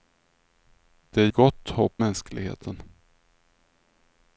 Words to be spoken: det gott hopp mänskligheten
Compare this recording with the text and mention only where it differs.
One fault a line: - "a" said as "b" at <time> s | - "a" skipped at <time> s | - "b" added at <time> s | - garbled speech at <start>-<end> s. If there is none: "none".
none